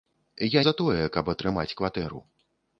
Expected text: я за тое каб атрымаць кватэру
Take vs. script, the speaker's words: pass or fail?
pass